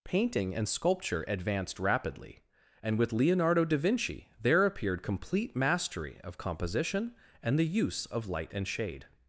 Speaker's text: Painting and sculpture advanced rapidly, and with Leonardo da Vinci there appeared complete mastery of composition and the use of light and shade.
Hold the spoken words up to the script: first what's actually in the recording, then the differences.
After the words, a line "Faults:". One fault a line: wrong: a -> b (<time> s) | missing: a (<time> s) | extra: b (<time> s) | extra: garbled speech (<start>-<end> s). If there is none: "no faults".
Painting and sculpture advanced rapidly, and with Leonardo da Vinci there appeared complete mastery of composition and the use of light and shade.
Faults:
no faults